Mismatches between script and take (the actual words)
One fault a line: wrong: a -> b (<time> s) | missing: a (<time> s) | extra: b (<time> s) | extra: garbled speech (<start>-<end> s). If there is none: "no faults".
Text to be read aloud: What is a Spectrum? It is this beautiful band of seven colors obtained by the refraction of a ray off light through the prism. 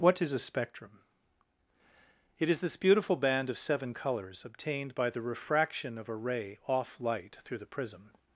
no faults